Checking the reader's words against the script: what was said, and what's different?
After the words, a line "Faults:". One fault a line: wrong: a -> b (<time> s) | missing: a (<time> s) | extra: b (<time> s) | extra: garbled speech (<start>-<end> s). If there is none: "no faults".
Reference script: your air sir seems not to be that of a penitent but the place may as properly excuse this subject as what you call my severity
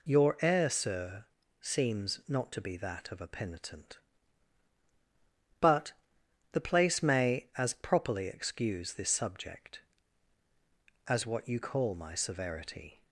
your air sir seems not to be that of a penitent but the place may as properly excuse this subject as what you call my severity
Faults:
no faults